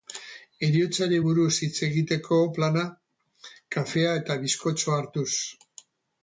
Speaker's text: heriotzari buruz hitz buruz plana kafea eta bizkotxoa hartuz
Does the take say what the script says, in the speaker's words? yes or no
no